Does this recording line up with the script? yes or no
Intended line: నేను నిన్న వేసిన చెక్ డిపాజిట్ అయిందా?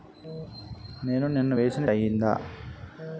no